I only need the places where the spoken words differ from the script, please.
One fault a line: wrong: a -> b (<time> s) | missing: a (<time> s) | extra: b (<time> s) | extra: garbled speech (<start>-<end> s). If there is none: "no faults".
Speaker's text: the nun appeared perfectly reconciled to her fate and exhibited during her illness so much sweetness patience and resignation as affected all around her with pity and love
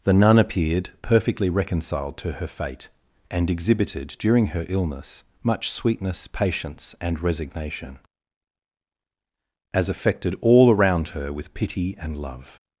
missing: so (5.2 s)